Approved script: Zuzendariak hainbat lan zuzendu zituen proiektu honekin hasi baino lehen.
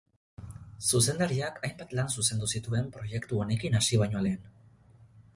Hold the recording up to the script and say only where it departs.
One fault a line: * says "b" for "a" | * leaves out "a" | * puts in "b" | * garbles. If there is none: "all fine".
all fine